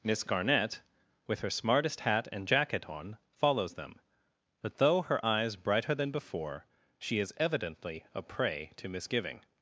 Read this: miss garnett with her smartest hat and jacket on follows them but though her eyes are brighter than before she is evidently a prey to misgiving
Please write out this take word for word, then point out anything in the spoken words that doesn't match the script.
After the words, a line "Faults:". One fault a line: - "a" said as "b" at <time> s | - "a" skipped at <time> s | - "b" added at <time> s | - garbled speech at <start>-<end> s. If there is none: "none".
miss garnett with her smartest hat and jacket on follows them but though her eyes brighter than before she is evidently a prey to misgiving
Faults:
- "are" skipped at 5.6 s